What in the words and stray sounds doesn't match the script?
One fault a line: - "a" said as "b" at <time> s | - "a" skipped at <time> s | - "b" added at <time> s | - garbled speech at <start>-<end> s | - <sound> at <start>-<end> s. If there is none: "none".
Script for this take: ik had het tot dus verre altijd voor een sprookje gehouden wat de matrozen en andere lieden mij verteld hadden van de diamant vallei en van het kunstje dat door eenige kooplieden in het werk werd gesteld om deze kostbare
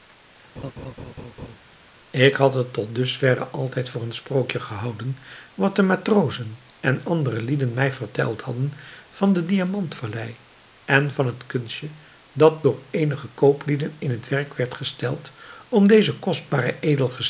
- laugh at 0.6-1.6 s